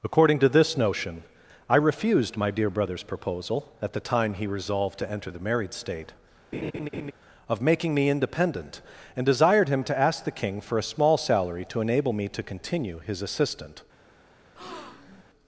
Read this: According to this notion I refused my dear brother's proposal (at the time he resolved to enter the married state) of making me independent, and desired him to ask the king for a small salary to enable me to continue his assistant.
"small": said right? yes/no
yes